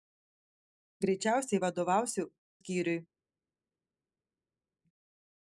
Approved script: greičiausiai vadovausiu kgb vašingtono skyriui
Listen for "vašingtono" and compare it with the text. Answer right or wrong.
wrong